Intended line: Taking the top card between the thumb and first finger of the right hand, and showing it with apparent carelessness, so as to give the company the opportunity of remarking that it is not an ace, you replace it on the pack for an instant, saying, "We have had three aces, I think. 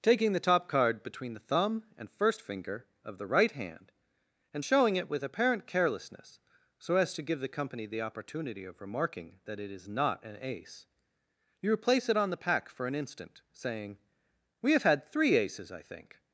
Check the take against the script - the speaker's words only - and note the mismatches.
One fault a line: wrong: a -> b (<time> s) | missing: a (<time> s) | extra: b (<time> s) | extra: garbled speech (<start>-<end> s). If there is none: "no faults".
no faults